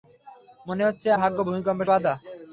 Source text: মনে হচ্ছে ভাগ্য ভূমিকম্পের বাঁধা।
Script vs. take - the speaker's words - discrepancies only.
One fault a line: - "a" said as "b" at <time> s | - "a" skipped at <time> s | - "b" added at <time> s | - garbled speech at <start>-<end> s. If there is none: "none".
none